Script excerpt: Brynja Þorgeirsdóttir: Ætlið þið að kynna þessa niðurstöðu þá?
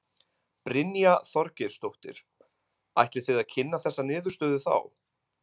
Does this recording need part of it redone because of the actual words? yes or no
no